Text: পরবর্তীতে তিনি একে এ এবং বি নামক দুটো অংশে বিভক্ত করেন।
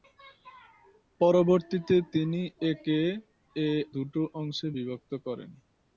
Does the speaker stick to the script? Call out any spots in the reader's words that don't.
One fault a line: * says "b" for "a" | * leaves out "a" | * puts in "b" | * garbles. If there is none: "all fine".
* leaves out "এবং বি নামক"